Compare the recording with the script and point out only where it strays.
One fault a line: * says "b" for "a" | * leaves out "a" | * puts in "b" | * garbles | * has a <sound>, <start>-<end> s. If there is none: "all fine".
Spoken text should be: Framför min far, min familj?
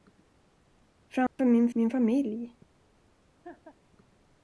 * has a dropout, 1.3-1.4 s
* leaves out "far"
* has a laugh, 3.4-3.8 s